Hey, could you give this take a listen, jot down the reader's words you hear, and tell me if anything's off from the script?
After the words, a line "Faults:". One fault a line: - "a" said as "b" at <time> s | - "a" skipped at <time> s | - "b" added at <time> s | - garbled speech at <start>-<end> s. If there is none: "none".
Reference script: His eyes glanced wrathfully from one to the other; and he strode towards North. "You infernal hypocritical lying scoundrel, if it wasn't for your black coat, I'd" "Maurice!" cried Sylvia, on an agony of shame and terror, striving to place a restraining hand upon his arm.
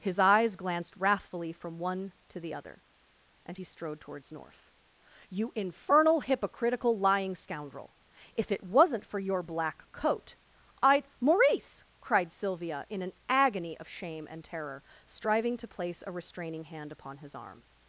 His eyes glanced wrathfully from one to the other; and he strode towards North. "You infernal hypocritical lying scoundrel, if it wasn't for your black coat, I'd" "Maurice!" cried Sylvia, in an agony of shame and terror, striving to place a restraining hand upon his arm.
Faults:
- "on" said as "in" at 12.9 s